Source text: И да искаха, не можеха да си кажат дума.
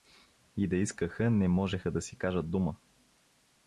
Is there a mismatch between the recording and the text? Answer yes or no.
no